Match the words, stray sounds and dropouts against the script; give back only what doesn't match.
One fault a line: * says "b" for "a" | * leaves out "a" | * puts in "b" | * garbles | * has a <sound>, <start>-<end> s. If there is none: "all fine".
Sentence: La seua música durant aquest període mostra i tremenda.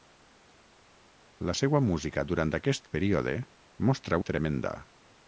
all fine